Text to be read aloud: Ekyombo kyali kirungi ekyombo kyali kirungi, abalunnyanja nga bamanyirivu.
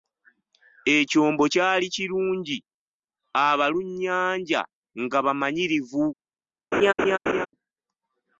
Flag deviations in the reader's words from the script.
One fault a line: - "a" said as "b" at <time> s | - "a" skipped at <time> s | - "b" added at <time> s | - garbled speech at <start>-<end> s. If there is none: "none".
- "ekyombo kyali kirungi" skipped at 2.6 s